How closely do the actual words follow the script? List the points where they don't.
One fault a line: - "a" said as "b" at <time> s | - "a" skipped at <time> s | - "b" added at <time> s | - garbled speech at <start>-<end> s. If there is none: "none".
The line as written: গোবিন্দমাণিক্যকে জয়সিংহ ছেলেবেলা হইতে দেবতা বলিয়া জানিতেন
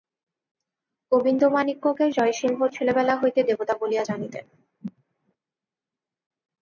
none